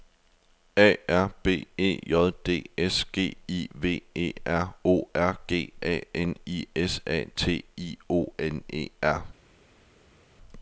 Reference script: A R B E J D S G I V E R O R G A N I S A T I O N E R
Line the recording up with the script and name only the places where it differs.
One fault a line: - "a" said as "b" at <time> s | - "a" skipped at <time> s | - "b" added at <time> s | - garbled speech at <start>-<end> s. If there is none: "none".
none